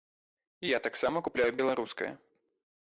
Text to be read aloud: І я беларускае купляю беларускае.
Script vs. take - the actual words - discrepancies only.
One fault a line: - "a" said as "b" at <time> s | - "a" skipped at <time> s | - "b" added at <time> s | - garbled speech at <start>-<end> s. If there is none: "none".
- "беларускае" said as "таксама" at 0.9 s